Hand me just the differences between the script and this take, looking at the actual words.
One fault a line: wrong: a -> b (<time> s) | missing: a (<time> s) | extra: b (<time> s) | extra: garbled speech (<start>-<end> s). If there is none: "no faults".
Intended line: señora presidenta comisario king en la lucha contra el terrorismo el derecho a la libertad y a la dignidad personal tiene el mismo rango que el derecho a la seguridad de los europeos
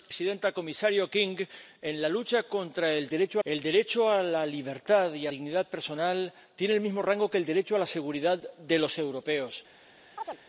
wrong: terrorismo -> derecho (3.1 s)
missing: la (5.3 s)